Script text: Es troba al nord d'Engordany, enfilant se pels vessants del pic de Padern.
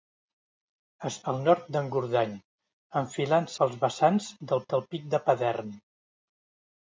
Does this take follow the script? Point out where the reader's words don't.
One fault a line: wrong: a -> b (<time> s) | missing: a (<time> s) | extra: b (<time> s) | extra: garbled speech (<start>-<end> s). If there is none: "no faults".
missing: troba (1.2 s)
missing: se (3.5 s)
extra: del (4.7 s)